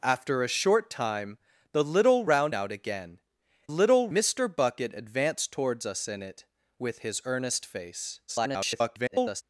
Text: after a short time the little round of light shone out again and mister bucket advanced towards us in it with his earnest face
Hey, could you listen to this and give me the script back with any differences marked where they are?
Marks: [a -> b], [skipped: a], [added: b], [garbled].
after a short time the little round [skipped: of light shone] out again [and -> little] mister bucket advanced towards us in it with his earnest face [garbled]